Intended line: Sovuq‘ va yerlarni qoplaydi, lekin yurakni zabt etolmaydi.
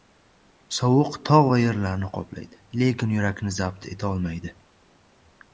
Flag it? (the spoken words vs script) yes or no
yes